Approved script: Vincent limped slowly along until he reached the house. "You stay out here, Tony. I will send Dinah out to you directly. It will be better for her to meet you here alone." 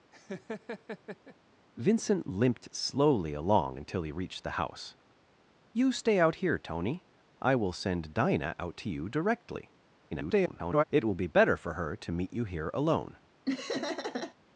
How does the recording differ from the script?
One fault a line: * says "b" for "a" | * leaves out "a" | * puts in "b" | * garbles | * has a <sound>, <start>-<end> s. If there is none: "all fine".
* has a laugh, 0.1-1.4 s
* garbles
* has a laugh, 13.5-14.4 s